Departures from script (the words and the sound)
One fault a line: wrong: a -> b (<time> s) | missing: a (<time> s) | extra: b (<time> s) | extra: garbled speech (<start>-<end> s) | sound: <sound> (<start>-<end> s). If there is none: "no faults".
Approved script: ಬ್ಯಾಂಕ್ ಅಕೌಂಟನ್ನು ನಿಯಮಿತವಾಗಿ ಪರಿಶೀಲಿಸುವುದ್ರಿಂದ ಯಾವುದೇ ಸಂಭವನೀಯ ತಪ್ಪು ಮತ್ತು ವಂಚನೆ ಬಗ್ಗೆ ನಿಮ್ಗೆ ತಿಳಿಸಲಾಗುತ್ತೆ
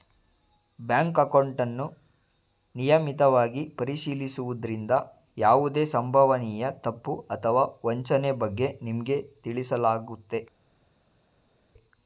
wrong: ಮತ್ತು -> ಅಥವಾ (7.3 s)